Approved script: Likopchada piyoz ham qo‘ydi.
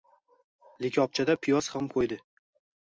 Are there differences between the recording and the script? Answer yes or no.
no